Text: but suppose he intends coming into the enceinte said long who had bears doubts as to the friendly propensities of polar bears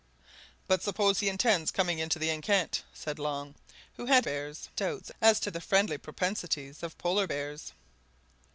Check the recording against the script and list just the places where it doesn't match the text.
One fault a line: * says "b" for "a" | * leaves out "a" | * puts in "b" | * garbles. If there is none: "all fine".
all fine